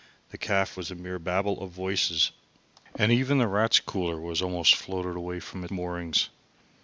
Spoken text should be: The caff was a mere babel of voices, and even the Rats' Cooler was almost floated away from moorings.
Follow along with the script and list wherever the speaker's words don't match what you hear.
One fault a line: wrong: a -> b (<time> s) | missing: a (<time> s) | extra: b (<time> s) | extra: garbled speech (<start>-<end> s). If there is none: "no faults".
no faults